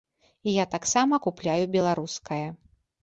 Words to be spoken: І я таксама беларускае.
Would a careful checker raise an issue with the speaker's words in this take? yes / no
yes